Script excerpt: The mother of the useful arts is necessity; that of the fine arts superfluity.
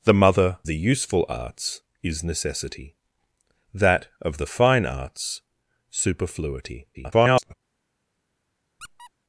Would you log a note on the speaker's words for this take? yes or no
yes